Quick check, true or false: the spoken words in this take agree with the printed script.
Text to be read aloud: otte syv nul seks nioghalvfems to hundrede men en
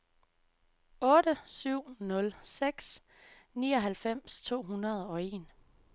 false